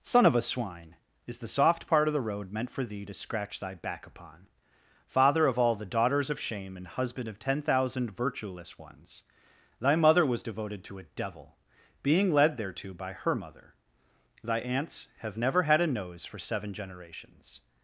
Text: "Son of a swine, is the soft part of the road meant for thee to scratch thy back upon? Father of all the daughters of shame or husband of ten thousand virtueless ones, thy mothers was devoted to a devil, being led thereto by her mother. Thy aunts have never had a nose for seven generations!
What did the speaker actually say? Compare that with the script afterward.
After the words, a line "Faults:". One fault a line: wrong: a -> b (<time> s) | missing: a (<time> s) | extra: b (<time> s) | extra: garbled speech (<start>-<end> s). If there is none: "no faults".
"Son of a swine, is the soft part of the road meant for thee to scratch thy back upon? Father of all the daughters of shame and husband of ten thousand virtueless ones, thy mother was devoted to a devil, being led thereto by her mother. Thy aunts have never had a nose for seven generations!
Faults:
wrong: or -> and (6.8 s)
wrong: mothers -> mother (9.9 s)